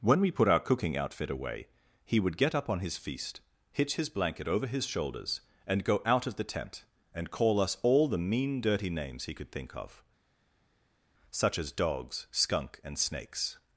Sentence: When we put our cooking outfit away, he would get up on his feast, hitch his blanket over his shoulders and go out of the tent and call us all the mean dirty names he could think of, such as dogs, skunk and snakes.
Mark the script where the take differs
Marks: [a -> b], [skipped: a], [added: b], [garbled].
When we put our cooking outfit away, he would get up on his feast, hitch his blanket over his shoulders and go out of the tent and call us all the mean dirty names he could think of, such as dogs, skunk and snakes.